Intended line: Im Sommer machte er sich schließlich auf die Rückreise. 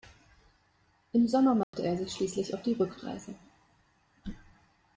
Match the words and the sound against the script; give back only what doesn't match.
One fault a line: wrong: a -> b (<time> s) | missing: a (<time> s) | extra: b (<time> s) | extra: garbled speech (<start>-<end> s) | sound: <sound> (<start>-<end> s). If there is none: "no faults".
sound: dropout (1.6-1.7 s)